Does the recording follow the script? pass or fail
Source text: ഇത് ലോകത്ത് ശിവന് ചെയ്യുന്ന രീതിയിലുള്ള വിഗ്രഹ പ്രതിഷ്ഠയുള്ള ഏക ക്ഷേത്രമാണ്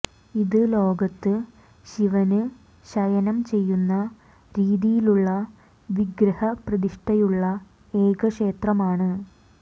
fail